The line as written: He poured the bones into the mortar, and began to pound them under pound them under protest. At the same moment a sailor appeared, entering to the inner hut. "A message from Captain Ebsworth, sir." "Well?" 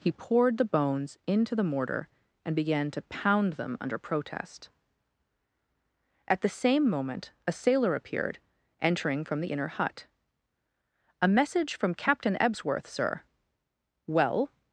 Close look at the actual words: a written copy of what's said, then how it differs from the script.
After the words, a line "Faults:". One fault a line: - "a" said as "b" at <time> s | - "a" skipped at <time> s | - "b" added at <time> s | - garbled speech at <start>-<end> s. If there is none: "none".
He poured the bones into the mortar, and began to pound them under protest. At the same moment a sailor appeared, entering from the inner hut. "A message from Captain Ebsworth, sir." "Well?"
Faults:
- "pound them under" skipped at 4.0 s
- "to" said as "from" at 9.2 s